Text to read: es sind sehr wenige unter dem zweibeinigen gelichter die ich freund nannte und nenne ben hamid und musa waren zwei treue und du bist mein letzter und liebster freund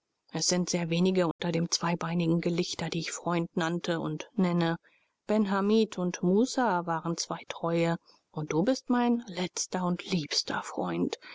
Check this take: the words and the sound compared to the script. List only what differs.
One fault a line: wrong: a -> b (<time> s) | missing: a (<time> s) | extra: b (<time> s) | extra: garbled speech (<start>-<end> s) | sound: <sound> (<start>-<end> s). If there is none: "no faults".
sound: dropout (1.3-1.4 s)